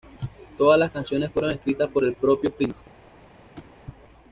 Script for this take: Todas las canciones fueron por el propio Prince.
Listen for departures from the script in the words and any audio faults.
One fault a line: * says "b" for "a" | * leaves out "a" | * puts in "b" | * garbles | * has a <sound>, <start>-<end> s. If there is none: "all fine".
* puts in "escritas"
* has a thud, 3.6-3.7 s